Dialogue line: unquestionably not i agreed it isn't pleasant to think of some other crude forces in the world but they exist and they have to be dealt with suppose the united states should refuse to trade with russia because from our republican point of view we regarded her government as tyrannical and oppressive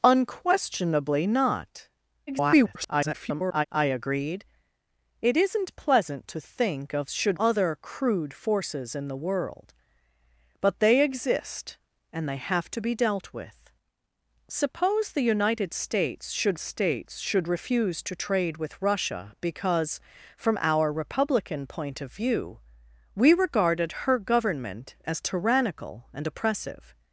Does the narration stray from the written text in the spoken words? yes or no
yes